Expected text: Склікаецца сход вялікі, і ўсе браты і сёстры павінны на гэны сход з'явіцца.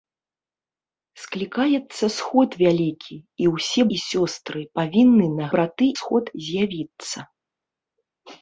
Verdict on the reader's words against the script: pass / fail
fail